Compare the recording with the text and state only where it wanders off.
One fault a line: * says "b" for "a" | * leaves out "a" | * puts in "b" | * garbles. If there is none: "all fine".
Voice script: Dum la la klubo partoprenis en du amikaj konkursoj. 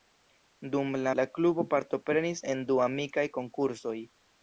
all fine